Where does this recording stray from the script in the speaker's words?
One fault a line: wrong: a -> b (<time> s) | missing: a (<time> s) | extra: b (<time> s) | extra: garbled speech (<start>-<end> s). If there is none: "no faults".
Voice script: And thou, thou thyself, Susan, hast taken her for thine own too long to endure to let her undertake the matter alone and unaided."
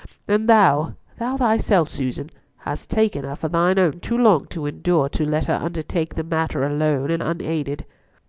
no faults